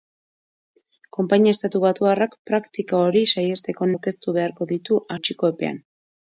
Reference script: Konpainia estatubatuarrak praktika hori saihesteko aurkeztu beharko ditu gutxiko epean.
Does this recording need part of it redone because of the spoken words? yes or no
no